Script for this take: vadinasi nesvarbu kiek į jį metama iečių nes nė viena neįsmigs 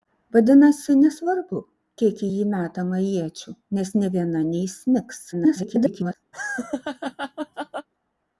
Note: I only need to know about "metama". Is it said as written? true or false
true